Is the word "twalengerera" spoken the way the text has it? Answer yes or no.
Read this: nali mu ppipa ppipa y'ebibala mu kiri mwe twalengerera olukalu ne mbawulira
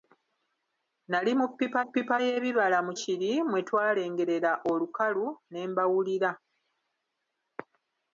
yes